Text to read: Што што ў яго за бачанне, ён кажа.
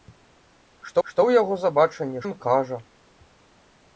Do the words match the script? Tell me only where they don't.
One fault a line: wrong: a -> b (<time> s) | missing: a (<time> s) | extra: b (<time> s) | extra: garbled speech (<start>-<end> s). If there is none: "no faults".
no faults